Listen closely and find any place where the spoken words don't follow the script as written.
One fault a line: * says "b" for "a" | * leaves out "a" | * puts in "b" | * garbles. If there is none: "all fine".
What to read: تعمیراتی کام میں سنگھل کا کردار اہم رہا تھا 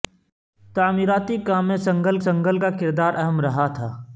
* puts in "سنگھل"